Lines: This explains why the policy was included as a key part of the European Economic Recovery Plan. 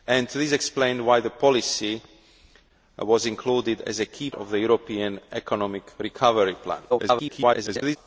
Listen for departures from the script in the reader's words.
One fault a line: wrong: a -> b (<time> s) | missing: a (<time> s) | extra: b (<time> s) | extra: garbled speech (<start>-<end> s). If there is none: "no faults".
missing: part (4.3 s)
extra: garbled speech (6.9-8.0 s)